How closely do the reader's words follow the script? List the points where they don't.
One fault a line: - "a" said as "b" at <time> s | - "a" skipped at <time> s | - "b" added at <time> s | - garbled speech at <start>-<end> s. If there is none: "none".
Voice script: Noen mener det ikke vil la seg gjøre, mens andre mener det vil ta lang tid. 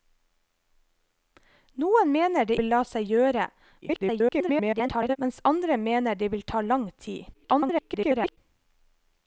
- "ikke" skipped at 2.6 s
- garbled speech at 3.8-5.2 s
- garbled speech at 7.3-8.4 s